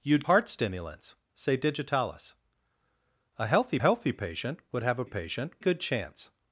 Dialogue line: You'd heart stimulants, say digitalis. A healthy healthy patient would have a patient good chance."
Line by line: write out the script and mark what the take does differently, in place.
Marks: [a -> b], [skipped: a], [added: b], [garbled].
You'd heart stimulants, say digitalis. A healthy healthy patient would have a patient good chance."